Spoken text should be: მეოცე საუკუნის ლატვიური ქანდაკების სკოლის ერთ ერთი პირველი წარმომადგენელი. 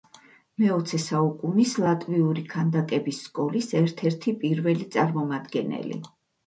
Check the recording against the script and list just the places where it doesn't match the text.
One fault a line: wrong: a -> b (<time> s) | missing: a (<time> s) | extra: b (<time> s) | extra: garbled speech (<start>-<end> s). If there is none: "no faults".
no faults